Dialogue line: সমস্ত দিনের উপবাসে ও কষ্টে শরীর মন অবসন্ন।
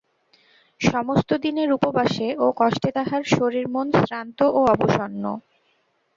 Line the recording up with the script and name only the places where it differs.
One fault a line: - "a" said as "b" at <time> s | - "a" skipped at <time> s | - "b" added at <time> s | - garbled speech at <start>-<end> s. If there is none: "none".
- "তাহার" added at 3.0 s
- "শ্রান্ত ও" added at 4.0 s